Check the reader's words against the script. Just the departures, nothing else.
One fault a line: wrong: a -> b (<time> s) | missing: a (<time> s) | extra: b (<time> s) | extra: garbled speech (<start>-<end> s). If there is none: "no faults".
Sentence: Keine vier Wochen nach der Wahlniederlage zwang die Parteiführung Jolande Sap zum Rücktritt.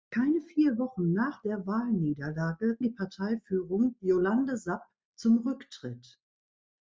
missing: zwang (2.8 s)